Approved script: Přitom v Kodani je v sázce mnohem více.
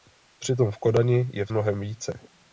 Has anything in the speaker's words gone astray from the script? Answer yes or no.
yes